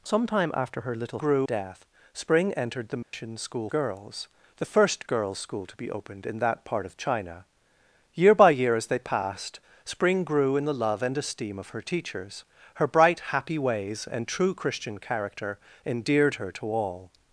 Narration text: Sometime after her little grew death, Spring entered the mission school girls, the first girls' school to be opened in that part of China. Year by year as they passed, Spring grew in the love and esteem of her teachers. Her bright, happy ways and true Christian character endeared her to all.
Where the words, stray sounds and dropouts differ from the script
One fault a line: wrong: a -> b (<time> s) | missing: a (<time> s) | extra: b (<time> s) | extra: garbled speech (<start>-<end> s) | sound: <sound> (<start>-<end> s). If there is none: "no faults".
sound: dropout (3.0-3.1 s)